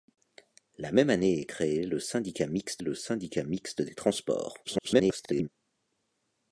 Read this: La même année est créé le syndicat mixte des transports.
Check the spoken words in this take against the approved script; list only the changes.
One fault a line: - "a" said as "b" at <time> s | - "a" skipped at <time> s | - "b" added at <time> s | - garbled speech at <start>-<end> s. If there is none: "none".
- "le syndicat mixte" added at 2.8 s
- garbled speech at 4.6-5.5 s